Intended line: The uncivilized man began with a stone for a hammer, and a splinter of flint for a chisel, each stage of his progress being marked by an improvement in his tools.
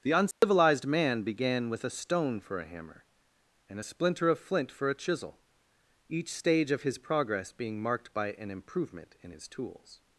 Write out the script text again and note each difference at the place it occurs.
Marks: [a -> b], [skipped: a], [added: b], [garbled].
The uncivilized man began with a stone for a hammer, and a splinter of flint for a chisel, each stage of his progress being marked by an improvement in his tools.